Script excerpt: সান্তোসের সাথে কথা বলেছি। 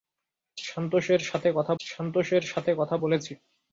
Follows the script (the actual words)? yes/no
no